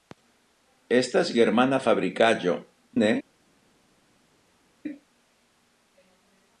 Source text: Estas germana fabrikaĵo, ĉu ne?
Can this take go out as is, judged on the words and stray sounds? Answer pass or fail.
fail